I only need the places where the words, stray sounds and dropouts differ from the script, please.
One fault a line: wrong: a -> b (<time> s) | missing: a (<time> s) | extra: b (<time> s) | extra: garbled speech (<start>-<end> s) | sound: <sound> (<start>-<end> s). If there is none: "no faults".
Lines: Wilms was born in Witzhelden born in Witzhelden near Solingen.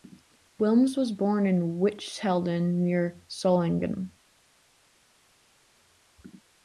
missing: born in Witzhelden (2.8 s)